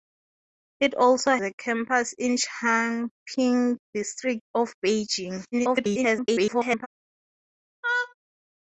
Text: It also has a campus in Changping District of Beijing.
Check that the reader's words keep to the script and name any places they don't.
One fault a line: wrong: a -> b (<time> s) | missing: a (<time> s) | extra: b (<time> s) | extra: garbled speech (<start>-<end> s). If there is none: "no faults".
missing: has (1.4 s)
extra: garbled speech (5.5-6.9 s)